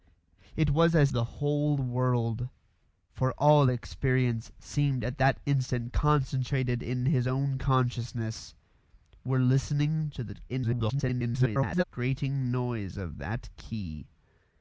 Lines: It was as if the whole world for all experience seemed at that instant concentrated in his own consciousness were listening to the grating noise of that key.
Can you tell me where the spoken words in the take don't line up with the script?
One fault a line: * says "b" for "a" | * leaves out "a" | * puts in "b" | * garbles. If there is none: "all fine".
* leaves out "if"
* garbles